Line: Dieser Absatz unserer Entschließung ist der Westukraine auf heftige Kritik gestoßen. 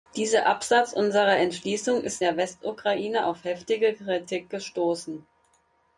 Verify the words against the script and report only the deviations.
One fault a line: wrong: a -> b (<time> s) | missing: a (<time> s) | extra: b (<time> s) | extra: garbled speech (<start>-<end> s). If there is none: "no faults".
no faults